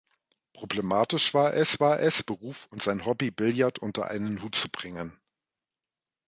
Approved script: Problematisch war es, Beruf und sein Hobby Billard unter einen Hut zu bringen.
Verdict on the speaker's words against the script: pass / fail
fail